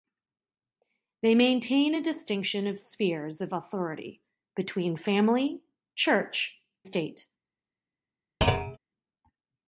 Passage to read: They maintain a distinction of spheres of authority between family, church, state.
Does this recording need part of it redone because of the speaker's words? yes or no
no